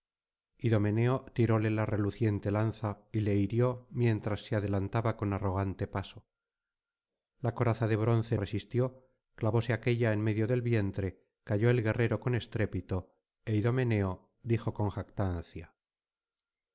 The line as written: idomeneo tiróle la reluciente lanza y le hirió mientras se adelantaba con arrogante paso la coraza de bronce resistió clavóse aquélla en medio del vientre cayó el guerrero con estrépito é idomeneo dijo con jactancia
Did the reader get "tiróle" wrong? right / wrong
right